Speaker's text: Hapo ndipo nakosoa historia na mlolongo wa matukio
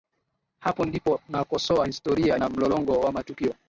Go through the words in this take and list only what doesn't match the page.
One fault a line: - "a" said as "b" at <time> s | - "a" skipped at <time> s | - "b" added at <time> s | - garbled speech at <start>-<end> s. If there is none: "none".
none